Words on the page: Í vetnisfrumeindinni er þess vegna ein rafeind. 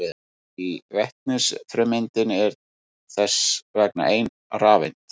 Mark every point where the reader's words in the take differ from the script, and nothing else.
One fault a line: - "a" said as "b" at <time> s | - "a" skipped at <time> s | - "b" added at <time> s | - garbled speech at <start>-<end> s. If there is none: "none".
none